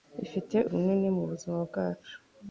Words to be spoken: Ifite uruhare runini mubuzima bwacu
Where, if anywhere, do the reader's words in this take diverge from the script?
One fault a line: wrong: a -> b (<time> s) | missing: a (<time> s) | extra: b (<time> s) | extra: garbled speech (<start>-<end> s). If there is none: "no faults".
missing: uruhare (0.6 s)